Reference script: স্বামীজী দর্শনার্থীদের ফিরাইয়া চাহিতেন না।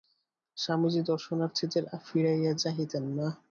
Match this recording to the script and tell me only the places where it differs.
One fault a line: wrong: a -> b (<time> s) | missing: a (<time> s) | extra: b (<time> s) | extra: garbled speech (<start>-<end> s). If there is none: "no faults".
no faults